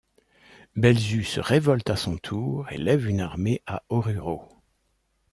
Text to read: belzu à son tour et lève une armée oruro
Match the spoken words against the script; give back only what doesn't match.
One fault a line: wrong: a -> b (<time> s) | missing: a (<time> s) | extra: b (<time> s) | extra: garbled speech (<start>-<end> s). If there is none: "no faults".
extra: se révolte (1.2 s)
extra: à (3.7 s)